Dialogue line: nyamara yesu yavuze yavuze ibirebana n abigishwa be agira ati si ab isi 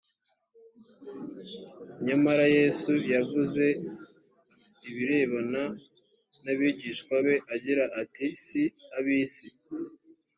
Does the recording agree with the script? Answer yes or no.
no